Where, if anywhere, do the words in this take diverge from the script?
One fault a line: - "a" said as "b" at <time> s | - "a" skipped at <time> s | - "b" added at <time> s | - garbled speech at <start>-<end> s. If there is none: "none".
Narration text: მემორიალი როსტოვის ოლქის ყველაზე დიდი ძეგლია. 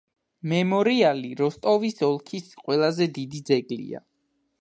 none